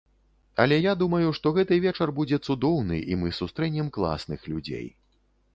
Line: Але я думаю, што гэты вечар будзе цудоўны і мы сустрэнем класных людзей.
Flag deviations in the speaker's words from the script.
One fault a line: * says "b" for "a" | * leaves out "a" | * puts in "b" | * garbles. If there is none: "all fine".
all fine